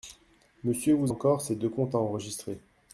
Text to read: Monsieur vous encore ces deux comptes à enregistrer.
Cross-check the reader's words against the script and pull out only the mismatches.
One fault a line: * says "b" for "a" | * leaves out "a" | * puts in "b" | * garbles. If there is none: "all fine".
all fine